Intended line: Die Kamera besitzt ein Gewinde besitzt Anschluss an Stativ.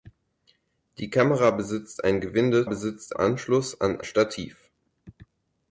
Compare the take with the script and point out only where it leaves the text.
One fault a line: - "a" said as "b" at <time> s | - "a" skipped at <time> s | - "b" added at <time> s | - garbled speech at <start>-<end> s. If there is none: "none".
none